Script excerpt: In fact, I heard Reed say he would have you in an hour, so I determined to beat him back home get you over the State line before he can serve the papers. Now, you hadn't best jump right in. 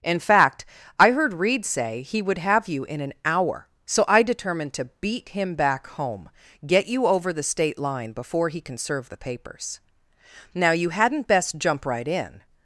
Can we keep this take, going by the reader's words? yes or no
yes